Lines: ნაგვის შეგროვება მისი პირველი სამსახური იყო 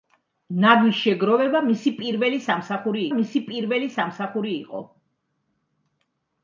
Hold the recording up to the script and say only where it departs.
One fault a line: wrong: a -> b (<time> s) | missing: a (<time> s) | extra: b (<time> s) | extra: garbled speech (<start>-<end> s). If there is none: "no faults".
extra: მისი პირველი სამსახური (3.2 s)